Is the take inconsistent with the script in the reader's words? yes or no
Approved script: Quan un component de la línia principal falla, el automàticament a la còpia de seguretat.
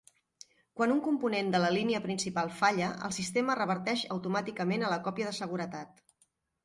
yes